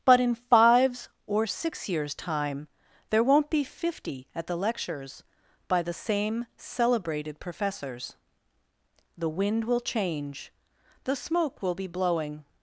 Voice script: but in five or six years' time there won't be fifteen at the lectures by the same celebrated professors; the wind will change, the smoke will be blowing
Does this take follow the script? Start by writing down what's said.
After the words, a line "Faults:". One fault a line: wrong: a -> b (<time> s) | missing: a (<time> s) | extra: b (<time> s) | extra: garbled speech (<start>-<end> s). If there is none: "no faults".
but in fives or six years' time there won't be fifty at the lectures by the same celebrated professors; the wind will change, the smoke will be blowing
Faults:
wrong: five -> fives (0.3 s)
wrong: fifteen -> fifty (3.6 s)